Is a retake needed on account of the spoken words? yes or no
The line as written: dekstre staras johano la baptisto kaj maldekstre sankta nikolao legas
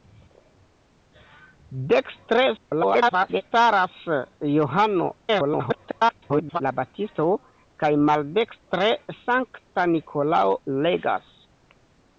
yes